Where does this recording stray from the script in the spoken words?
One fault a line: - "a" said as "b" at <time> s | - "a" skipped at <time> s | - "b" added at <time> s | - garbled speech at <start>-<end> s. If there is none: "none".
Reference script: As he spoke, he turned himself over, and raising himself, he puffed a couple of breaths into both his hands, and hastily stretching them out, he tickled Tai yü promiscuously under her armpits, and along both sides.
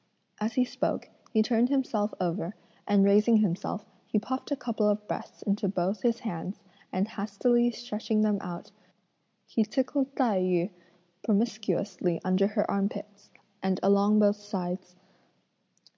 none